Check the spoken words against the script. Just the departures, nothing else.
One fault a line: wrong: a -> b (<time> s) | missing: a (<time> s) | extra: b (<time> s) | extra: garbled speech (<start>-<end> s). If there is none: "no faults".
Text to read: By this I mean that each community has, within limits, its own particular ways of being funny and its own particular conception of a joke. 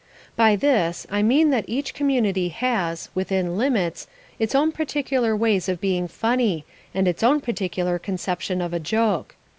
no faults